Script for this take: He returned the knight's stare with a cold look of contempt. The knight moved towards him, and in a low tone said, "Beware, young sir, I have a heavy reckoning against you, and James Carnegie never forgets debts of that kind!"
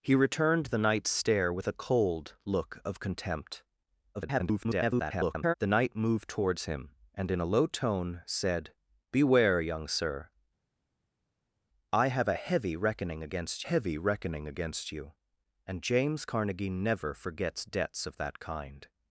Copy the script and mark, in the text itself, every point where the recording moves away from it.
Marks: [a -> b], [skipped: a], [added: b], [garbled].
He returned the knight's stare with a cold look of contempt. [garbled] The knight moved towards him, and in a low tone said, "Beware, young sir, I have a heavy reckoning against [added: heavy reckoning against] you, and James Carnegie never forgets debts of that kind!"